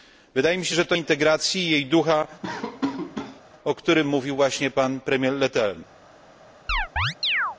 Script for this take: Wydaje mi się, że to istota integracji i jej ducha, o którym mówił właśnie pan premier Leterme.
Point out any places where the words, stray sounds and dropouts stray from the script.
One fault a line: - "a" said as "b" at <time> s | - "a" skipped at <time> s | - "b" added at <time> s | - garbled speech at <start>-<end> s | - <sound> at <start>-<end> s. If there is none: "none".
- "istota" skipped at 0.9 s
- laugh at 2.4-3.4 s
- chirp at 6.7-7.6 s